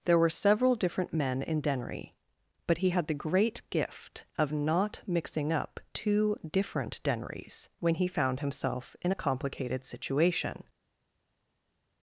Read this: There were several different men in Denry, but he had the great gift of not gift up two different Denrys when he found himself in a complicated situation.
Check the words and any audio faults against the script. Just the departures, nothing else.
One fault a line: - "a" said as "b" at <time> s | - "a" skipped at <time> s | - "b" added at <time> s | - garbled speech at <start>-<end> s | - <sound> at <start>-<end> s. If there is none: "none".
- "gift" said as "mixing" at 5.1 s